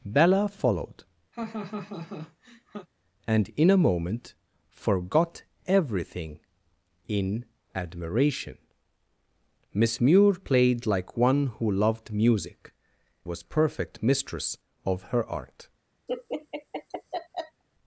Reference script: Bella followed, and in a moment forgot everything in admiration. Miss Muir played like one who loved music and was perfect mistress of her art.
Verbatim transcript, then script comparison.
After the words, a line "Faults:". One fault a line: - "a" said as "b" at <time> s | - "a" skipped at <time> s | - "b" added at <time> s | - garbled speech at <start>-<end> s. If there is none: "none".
Bella followed, and in a moment forgot everything in admiration. Miss Muir played like one who loved music was perfect mistress of her art.
Faults:
- "and" skipped at 12.7 s